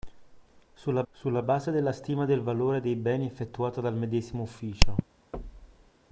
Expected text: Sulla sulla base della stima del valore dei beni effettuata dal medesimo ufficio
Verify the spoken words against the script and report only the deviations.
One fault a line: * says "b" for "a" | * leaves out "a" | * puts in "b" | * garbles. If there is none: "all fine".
all fine